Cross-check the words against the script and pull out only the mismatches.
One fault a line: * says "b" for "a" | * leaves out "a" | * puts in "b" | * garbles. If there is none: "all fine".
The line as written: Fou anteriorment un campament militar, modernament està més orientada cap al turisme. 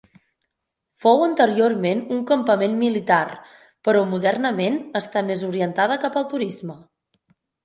* puts in "però"